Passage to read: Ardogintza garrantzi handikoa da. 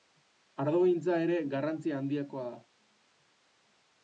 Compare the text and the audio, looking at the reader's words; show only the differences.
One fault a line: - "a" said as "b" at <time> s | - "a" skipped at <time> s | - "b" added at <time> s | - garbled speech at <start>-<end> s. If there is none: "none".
- "ere" added at 1.2 s